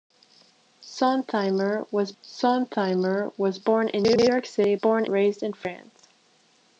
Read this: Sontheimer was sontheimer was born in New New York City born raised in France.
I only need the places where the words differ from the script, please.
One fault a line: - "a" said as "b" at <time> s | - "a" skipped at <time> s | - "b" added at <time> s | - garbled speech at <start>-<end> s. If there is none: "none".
none